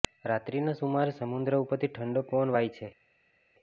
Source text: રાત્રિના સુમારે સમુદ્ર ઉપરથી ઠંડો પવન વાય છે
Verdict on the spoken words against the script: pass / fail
pass